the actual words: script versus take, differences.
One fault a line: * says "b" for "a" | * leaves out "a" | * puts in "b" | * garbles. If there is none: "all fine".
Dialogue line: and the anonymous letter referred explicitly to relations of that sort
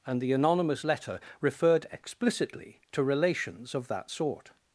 all fine